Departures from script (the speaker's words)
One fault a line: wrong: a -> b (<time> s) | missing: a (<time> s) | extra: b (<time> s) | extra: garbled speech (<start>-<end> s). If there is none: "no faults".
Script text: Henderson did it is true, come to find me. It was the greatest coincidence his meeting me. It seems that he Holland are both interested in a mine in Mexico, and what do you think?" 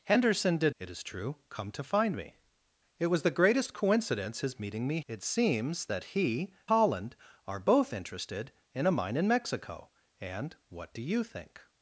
no faults